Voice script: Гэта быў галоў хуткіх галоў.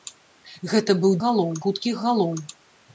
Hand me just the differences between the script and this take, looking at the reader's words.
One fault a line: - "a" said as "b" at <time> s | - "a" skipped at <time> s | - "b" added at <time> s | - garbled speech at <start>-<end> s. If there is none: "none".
none